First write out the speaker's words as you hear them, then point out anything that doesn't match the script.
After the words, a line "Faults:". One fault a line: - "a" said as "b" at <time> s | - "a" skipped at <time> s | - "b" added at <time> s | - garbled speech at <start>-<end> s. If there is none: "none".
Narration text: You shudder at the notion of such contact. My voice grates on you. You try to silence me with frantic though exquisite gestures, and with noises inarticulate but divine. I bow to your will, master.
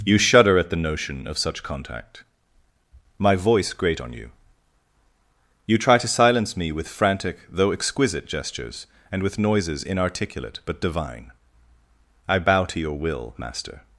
You shudder at the notion of such contact. My voice grate on you. You try to silence me with frantic though exquisite gestures, and with noises inarticulate but divine. I bow to your will, master.
Faults:
- "grates" said as "grate" at 3.7 s